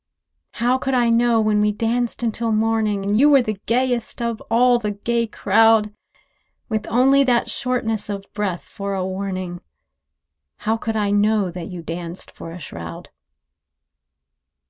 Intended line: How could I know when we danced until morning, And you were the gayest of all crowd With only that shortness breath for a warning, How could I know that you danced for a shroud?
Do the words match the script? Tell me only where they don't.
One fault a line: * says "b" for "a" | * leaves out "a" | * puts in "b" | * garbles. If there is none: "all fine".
* puts in "the gay"
* puts in "of"